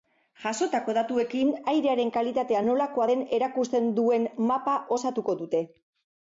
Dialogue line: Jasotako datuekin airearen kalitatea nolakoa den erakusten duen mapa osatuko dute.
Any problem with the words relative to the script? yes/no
no